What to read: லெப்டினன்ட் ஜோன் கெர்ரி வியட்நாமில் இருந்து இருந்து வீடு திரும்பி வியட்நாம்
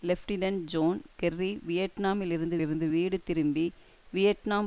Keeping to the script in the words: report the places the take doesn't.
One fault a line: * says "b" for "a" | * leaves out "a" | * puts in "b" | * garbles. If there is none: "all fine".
all fine